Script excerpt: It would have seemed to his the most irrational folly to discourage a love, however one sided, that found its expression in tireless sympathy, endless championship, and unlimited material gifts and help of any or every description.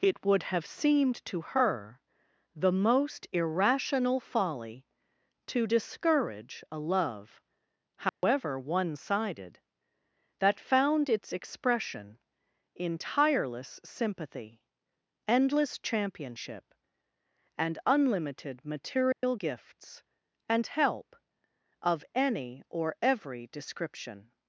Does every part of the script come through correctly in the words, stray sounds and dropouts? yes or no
no